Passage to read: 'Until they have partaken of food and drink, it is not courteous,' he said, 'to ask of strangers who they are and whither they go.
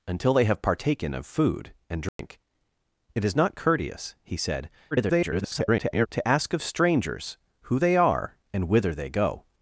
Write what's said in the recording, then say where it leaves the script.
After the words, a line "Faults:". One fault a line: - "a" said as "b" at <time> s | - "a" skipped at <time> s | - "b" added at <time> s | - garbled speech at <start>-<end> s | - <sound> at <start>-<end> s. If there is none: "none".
'Until they have partaken of food and drink, it is not courteous,' he said, [garbled] 'to ask of strangers who they are and whither they go.
Faults:
- dropout at 2.1-2.2 s
- garbled speech at 4.9-6.1 s